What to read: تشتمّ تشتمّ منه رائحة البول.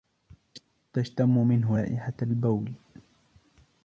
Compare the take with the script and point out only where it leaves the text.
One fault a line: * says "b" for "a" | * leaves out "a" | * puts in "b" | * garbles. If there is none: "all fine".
* leaves out "تشتمّ"